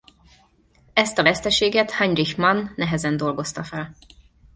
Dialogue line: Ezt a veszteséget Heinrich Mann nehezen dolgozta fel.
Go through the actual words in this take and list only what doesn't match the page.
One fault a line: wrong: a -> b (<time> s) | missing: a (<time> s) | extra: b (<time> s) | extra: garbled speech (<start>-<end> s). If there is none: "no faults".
no faults